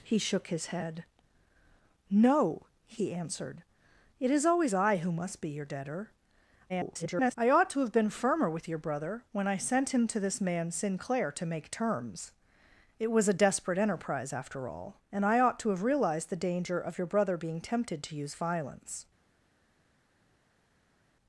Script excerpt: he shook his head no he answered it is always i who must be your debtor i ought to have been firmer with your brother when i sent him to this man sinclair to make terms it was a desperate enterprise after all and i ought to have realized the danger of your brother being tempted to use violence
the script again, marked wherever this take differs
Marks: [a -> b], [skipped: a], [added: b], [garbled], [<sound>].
he shook his head no he answered it is always i who must be your debtor [garbled] i ought to have been firmer with your brother when i sent him to this man sinclair to make terms it was a desperate enterprise after all and i ought to have realized the danger of your brother being tempted to use violence